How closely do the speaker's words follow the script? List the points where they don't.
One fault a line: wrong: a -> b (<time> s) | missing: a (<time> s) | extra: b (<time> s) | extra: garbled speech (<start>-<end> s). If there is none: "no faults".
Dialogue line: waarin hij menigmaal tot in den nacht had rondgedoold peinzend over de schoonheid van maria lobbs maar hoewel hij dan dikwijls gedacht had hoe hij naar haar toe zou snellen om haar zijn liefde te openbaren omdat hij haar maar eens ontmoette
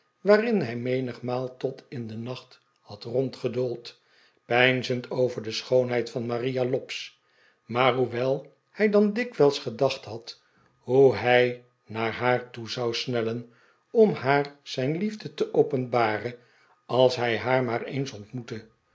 wrong: omdat -> als (16.9 s)